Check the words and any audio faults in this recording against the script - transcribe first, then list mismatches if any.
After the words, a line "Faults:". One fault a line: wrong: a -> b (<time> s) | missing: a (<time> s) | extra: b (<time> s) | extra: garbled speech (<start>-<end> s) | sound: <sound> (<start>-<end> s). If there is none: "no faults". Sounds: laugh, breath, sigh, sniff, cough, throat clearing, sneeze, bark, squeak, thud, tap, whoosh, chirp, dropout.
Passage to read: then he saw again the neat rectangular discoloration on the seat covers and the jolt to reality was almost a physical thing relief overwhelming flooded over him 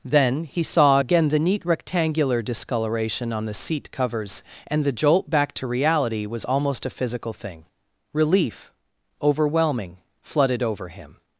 then he saw again the neat rectangular discoloration on the seat covers and the jolt back to reality was almost a physical thing relief overwhelming flooded over him
Faults:
extra: back (5.3 s)